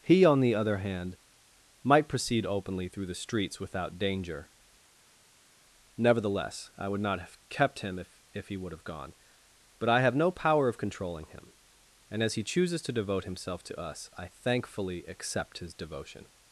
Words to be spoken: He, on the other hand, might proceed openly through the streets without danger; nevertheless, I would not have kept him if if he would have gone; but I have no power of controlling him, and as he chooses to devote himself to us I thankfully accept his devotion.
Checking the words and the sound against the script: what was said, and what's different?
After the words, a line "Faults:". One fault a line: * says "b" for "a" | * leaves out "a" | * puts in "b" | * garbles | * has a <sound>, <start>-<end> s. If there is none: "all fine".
He, on the other hand, might proceed openly through the streets without danger; nevertheless, I would not have kept him if if he would have gone; but I have no power of controlling him, and as he chooses to devote himself to us I thankfully accept his devotion.
Faults:
all fine